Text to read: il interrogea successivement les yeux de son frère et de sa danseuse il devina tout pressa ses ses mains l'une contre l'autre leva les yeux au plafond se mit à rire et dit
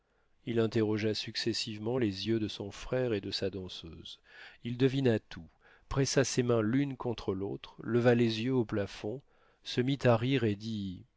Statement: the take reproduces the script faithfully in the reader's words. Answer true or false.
false